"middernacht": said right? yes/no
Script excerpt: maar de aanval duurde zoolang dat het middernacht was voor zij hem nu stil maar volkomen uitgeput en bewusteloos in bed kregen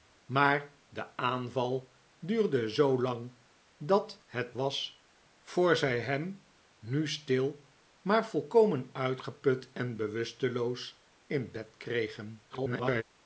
no